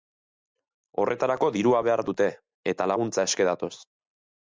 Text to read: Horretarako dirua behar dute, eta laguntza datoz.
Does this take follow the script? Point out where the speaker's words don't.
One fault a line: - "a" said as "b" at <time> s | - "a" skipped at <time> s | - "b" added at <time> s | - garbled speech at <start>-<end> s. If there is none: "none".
- "eske" added at 3.3 s